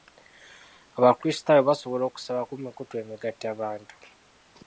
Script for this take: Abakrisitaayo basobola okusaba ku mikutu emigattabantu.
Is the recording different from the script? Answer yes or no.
no